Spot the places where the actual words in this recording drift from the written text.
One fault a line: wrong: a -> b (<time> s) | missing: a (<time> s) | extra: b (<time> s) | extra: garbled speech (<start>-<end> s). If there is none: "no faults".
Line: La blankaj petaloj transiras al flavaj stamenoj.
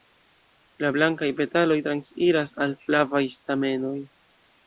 no faults